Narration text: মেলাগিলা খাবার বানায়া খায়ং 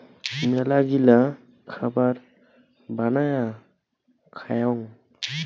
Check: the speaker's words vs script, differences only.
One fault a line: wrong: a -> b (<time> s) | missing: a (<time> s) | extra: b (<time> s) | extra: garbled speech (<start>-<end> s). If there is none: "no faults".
no faults